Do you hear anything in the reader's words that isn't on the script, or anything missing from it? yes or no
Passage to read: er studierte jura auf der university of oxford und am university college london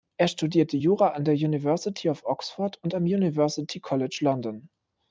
yes